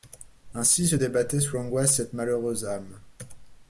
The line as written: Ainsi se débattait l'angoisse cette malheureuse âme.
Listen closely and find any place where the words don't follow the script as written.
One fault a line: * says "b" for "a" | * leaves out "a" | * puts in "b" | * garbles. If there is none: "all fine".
* puts in "sous"